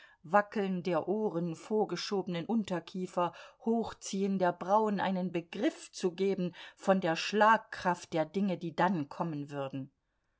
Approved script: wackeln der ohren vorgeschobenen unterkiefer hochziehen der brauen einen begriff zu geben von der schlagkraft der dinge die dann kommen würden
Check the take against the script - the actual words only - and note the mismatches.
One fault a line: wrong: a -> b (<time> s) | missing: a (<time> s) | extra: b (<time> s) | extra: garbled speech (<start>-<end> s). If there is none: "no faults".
no faults